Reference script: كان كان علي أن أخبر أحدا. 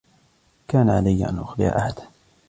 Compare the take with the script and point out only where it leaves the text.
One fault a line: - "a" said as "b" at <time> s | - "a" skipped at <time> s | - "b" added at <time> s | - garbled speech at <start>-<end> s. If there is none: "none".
- "كان" skipped at 0.9 s